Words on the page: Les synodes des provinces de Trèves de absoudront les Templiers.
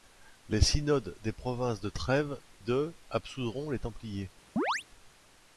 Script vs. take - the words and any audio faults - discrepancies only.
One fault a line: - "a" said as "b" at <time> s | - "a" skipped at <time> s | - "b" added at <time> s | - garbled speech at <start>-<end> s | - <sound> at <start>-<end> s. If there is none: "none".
- chirp at 4.6-4.8 s